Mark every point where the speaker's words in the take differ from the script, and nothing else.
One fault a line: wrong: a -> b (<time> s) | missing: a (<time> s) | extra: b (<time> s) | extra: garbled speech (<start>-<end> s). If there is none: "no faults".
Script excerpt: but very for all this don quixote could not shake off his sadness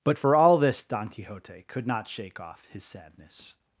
missing: very (0.2 s)